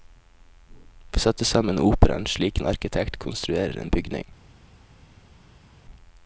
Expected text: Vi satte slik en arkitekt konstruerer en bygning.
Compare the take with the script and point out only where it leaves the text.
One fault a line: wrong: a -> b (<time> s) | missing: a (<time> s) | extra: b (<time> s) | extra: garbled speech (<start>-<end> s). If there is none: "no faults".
extra: sammen operaen (1.4 s)